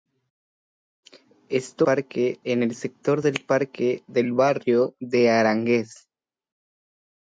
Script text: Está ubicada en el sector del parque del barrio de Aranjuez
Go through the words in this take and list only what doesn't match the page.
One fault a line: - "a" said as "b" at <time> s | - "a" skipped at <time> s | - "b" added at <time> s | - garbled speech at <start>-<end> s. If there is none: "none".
- "ubicada" said as "parque" at 1.8 s